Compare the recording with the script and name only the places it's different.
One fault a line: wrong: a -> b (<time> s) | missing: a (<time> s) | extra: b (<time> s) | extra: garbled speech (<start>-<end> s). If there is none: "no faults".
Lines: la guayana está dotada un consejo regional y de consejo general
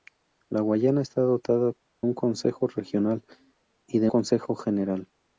no faults